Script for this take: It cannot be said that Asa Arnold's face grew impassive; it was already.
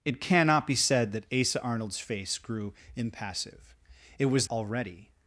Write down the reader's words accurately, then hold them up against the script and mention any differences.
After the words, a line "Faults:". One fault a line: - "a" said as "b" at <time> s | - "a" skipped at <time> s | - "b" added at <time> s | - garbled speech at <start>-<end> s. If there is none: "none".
It cannot be said that Asa Arnold's face grew impassive; it was already.
Faults:
none